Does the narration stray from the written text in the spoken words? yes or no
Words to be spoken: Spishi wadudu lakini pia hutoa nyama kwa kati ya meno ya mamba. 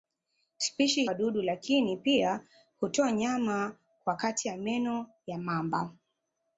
no